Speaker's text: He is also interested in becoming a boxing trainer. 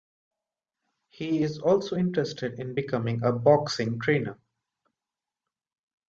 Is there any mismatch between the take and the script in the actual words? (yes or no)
no